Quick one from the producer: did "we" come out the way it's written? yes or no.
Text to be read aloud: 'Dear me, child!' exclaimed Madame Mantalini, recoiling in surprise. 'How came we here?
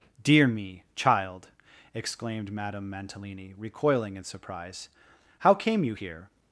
no